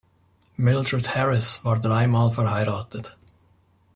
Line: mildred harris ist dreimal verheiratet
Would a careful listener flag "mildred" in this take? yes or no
no